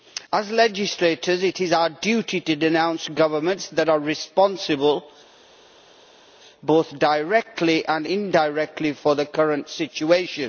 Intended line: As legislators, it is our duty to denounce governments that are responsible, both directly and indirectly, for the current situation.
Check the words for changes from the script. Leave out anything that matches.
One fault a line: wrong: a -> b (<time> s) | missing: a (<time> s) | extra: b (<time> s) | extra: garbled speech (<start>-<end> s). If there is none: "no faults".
no faults